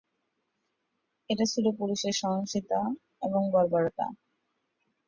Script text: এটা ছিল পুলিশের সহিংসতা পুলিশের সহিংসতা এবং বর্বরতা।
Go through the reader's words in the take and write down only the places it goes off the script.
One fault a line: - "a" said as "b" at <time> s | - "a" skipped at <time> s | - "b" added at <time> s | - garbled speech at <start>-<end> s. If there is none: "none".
- "পুলিশের সহিংসতা" skipped at 2.8 s